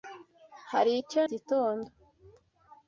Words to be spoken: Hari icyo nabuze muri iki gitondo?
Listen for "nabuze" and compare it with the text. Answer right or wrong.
wrong